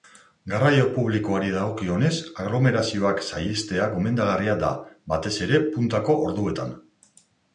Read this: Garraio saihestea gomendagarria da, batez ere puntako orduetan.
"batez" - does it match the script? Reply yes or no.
yes